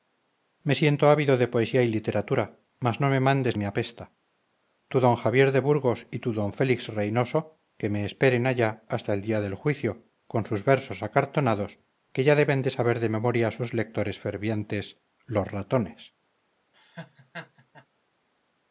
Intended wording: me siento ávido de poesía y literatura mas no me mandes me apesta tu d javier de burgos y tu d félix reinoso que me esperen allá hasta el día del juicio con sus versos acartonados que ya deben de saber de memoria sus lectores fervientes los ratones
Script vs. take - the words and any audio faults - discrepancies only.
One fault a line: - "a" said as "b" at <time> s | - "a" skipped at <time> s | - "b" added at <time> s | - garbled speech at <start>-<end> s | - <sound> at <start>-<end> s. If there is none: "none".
- laugh at 16.7-17.9 s